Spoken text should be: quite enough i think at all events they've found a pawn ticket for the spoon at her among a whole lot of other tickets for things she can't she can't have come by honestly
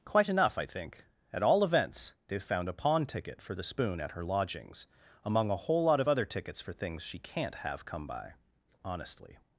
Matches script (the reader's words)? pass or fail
fail